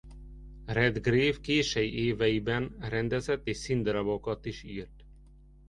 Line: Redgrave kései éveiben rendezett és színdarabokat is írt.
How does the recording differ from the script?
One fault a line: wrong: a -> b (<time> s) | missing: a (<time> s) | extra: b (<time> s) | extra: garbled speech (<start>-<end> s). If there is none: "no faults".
no faults